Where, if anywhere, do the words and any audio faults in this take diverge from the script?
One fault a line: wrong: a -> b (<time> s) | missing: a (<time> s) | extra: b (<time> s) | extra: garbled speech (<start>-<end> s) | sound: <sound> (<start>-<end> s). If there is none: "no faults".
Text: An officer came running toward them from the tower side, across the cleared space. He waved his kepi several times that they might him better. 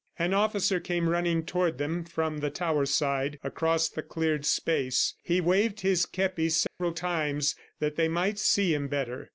sound: dropout (6.7-6.8 s)
extra: see (8.4 s)